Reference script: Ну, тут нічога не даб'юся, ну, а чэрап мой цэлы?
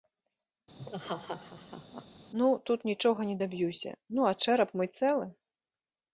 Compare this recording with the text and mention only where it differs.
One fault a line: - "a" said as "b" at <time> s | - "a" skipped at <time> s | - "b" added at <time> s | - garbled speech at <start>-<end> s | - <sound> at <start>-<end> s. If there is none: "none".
- laugh at 0.8-2.1 s